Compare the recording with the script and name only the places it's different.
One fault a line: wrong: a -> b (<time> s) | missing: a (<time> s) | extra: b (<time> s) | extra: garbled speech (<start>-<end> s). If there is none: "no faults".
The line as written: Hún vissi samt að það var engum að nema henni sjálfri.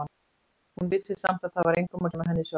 no faults